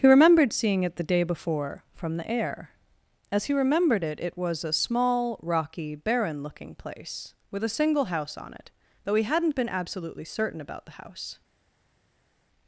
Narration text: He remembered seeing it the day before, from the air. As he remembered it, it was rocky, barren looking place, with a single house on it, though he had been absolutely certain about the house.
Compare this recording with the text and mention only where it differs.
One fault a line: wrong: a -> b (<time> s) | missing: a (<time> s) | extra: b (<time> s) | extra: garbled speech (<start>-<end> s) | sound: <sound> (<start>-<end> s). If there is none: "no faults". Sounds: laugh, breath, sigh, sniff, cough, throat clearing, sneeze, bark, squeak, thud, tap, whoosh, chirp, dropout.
extra: a small (4.6 s)
wrong: had -> hadn't (9.2 s)